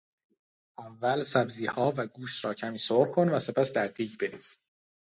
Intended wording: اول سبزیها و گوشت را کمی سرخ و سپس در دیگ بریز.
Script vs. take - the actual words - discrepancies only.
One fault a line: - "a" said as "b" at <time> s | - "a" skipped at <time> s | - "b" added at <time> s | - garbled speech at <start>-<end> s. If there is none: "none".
- "کن" added at 3.1 s